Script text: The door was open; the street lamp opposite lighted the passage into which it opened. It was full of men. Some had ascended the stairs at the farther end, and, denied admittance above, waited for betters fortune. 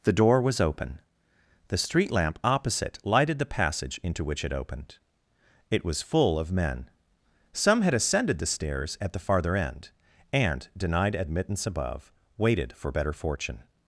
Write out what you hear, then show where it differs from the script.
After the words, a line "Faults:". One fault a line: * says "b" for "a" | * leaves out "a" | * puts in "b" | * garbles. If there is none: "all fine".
The door was open; the street lamp opposite lighted the passage into which it opened. It was full of men. Some had ascended the stairs at the farther end, and, denied admittance above, waited for better fortune.
Faults:
* says "better" for "betters"